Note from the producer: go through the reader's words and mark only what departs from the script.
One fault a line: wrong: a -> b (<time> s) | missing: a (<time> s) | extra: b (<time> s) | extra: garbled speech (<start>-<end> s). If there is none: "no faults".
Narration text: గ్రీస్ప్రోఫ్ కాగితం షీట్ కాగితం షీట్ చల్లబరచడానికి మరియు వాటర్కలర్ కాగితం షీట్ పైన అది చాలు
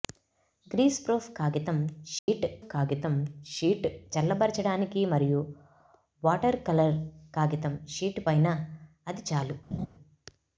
no faults